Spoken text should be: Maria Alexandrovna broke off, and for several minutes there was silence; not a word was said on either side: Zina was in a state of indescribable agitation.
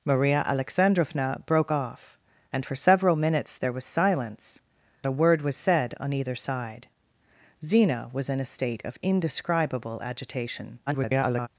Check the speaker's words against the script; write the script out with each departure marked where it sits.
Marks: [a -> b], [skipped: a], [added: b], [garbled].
Maria Alexandrovna broke off, and for several minutes there was silence; [skipped: not] a word was said on either side: Zina was in a state of indescribable agitation. [garbled]